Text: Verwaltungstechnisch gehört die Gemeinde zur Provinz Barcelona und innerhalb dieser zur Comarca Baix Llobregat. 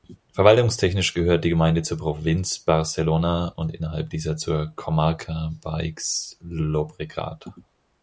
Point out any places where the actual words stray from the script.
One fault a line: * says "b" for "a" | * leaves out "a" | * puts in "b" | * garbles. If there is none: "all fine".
all fine